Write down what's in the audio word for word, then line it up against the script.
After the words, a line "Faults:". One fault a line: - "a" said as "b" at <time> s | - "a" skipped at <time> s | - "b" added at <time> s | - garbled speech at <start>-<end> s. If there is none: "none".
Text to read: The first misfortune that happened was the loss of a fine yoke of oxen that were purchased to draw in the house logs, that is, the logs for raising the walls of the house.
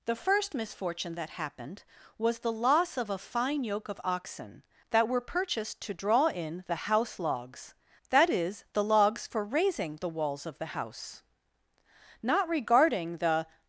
The first misfortune that happened was the loss of a fine yoke of oxen that were purchased to draw in the house logs, that is, the logs for raising the walls of the house. Not regarding the
Faults:
- "Not regarding the" added at 12.2 s